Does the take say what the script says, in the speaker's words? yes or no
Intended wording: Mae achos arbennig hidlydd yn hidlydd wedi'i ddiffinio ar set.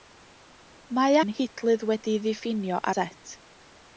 no